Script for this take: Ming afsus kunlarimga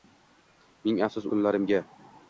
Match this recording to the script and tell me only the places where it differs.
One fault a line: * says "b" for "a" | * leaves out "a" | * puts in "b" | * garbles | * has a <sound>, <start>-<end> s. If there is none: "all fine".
all fine